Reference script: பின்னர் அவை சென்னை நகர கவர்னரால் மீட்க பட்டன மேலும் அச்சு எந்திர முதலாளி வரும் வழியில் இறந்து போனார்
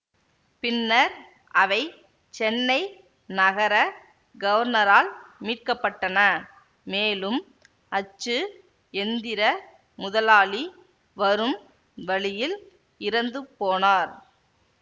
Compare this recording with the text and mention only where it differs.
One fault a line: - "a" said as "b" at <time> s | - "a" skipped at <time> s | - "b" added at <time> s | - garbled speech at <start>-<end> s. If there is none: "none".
none